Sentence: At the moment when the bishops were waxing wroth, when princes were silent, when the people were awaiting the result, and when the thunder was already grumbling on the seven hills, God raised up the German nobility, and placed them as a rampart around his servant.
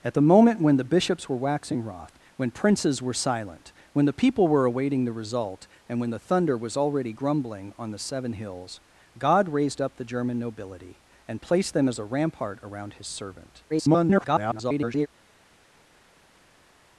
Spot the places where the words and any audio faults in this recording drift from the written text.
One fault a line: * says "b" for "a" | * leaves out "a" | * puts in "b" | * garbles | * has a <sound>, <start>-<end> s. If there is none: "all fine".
* garbles